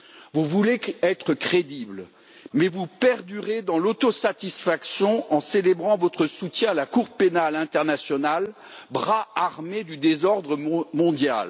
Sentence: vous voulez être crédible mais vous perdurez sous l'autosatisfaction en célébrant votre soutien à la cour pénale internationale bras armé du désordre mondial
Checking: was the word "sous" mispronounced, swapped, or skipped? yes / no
yes